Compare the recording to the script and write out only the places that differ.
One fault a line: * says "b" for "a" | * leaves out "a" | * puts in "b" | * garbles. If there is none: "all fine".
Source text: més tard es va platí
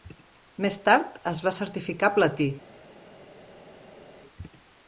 * puts in "certificar"